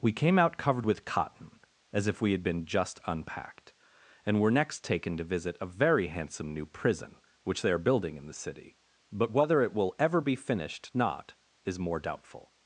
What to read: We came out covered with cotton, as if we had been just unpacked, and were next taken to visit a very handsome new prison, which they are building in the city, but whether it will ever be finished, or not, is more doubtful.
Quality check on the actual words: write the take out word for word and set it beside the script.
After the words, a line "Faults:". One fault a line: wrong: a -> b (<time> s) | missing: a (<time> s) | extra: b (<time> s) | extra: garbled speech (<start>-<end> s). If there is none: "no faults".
We came out covered with cotton, as if we had been just unpacked, and were next taken to visit a very handsome new prison, which they are building in the city, but whether it will ever be finished, not, is more doubtful.
Faults:
missing: or (10.9 s)